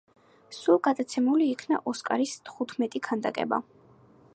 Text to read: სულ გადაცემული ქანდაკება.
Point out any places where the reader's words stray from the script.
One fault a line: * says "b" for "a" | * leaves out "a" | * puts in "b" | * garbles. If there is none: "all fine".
* puts in "იქნა ოსკარის თხუთმეტი"